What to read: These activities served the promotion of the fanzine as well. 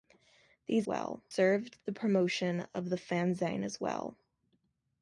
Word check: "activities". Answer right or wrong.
wrong